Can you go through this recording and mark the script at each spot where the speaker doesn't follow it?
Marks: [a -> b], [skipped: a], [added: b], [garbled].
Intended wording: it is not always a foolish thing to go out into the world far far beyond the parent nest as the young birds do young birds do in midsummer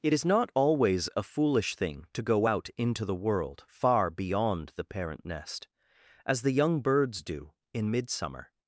it is not always a foolish thing to go out into the world far [skipped: far] beyond the parent nest as the young birds do [skipped: young birds do] in midsummer